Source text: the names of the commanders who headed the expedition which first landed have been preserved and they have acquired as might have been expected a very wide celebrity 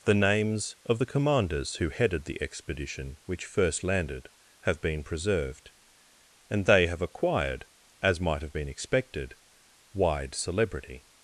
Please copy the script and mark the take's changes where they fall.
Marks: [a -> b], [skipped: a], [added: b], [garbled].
the names of the commanders who headed the expedition which first landed have been preserved and they have acquired as might have been expected [skipped: a very] wide celebrity